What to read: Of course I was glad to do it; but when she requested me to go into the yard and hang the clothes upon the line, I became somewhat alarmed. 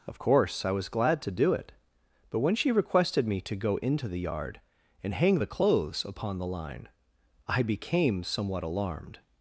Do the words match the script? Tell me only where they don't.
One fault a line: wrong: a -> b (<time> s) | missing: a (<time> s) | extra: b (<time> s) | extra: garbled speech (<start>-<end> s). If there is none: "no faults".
no faults